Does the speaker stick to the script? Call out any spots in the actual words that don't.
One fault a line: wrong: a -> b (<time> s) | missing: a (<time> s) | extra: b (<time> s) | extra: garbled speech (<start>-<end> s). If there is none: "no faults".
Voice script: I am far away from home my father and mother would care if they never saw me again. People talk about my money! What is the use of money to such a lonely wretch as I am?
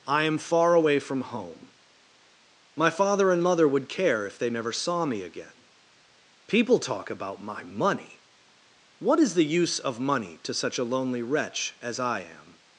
no faults